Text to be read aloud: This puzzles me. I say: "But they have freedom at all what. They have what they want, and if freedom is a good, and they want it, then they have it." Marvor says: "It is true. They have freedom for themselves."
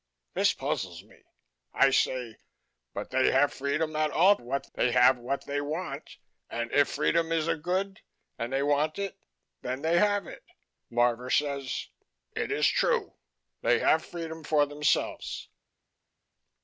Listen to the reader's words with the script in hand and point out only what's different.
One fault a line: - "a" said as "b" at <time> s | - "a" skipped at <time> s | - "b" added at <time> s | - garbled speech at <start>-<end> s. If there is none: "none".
none